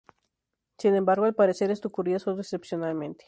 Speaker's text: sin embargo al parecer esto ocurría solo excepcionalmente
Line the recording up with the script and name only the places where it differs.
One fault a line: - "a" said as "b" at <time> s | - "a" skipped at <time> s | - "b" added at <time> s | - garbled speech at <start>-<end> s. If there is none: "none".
none